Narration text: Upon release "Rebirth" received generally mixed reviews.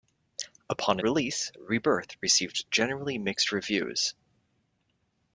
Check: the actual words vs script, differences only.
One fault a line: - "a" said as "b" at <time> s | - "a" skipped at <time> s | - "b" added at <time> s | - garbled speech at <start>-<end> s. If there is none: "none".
none